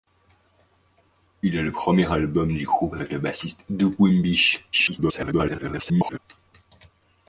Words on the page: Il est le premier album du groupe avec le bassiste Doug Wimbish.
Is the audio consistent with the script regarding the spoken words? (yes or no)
no